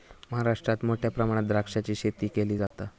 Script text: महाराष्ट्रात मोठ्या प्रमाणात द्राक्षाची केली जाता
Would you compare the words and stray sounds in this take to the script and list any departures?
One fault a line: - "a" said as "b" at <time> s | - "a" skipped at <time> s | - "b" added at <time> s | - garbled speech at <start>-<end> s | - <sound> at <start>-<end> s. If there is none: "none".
- "शेती" added at 1.9 s
- dropout at 2.7-2.7 s